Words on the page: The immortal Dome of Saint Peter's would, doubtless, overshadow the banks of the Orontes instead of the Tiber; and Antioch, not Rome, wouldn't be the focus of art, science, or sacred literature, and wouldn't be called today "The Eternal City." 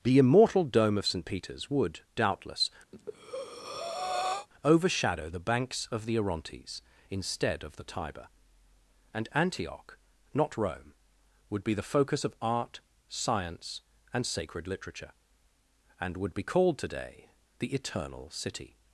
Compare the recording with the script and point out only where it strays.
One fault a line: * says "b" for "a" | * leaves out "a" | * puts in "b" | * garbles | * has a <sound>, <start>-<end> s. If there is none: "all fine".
* has a breath, 2.9-4.5 s
* says "would" for "wouldn't"
* says "and" for "or"
* says "would" for "wouldn't"